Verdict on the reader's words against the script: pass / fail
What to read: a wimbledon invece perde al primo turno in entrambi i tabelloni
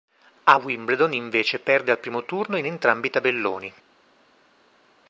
pass